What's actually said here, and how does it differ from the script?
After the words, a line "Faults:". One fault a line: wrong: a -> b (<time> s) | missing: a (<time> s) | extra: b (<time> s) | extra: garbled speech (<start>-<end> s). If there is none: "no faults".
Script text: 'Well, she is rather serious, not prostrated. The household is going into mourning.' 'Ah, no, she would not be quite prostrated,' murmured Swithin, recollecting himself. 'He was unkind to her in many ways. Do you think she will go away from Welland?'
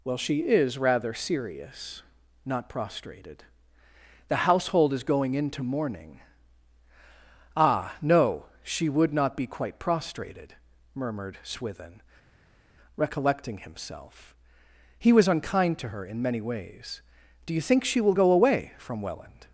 'Well, she is rather serious, not prostrated. The household is going into mourning.' 'Ah, no, she would not be quite prostrated,' murmured Swithin, recollecting himself. 'He was unkind to her in many ways. Do you think she will go away from Welland?'
Faults:
no faults